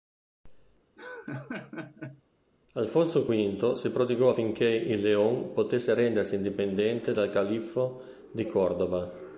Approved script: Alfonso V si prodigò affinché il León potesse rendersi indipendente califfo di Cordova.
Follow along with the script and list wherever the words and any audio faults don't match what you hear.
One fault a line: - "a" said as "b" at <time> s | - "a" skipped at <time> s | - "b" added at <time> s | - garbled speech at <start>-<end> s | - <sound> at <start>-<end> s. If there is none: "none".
- laugh at 1.0-2.2 s
- "dal" added at 7.1 s